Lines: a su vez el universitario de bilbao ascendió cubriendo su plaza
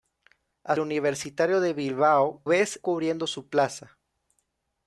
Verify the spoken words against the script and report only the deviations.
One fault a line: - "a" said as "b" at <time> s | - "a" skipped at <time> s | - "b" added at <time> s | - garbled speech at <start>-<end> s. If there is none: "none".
- "su vez el" skipped at 0.8 s
- "ascendió" said as "vez" at 2.5 s